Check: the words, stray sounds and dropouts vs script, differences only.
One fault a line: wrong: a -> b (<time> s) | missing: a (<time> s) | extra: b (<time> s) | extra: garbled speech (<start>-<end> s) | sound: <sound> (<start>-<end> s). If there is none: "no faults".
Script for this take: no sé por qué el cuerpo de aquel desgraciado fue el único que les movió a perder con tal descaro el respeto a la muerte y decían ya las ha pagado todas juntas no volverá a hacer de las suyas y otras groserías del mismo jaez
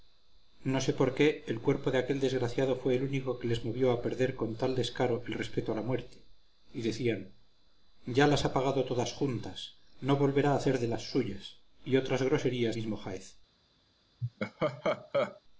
missing: del (12.8 s)
sound: laugh (14.2-15.4 s)